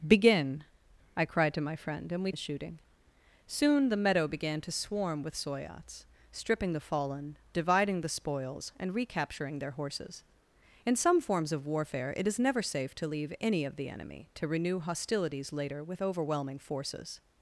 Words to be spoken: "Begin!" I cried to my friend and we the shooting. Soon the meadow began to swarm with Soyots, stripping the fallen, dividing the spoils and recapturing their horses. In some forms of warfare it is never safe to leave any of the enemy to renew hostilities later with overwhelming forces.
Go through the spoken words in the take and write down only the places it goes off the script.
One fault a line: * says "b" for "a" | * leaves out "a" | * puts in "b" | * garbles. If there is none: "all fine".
all fine